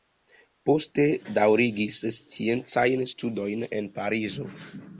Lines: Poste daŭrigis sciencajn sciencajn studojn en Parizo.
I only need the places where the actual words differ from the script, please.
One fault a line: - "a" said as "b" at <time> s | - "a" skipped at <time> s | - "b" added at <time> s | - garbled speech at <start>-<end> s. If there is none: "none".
- "sciencajn" skipped at 3.1 s